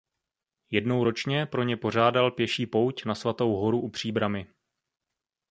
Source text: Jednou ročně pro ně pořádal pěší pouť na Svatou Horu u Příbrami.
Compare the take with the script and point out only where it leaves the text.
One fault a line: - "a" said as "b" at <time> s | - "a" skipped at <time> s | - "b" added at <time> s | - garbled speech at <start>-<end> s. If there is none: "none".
none